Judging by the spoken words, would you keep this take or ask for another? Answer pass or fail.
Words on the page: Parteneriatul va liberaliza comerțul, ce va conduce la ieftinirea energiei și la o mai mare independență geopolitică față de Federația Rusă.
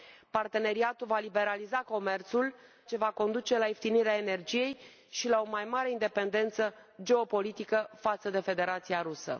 pass